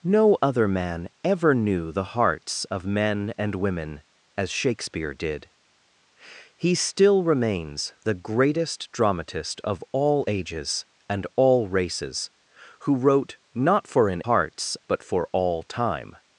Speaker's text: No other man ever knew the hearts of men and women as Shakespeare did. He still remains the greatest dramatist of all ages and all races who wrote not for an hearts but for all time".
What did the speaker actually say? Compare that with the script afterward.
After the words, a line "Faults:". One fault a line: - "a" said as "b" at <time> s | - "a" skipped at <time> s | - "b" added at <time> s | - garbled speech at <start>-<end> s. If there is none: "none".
No other man ever knew the hearts of men and women as Shakespeare did. He still remains the greatest dramatist of all ages and all races who wrote not for an hearts but for all time".
Faults:
none